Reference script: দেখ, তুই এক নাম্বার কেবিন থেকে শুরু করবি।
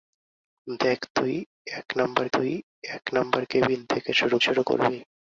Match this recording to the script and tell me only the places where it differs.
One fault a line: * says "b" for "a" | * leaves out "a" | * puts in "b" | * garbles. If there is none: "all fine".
* puts in "তুই এক নাম্বার"
* puts in "শুরু"